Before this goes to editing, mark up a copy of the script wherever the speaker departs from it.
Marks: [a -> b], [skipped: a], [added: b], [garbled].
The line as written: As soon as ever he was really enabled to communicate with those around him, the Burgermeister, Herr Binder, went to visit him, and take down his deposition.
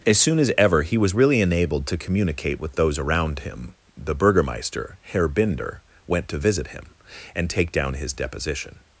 As soon as ever he was really enabled to communicate with those around him, the Burgermeister, Herr Binder, went to visit him, and take down his deposition.